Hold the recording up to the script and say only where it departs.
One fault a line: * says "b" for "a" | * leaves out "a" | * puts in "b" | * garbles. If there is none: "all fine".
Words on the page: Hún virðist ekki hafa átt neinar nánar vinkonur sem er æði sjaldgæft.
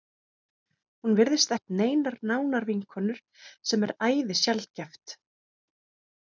* leaves out "ekki hafa"